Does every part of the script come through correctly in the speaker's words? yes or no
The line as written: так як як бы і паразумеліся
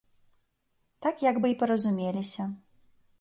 no